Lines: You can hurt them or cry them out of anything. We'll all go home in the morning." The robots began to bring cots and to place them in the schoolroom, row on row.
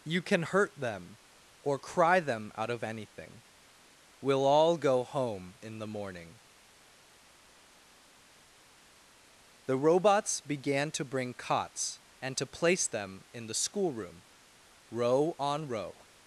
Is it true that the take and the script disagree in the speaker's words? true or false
false